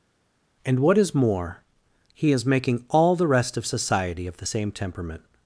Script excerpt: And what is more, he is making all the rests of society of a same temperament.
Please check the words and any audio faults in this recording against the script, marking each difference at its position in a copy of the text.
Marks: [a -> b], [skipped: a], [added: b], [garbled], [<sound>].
And what is more, he is making all the [rests -> rest] of society of [a -> the] same temperament.